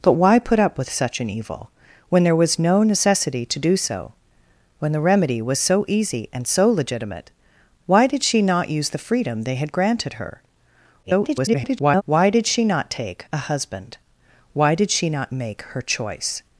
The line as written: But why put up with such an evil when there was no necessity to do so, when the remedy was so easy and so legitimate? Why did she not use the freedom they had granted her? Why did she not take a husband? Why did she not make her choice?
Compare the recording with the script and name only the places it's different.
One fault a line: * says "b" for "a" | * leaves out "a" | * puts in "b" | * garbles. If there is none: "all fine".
* garbles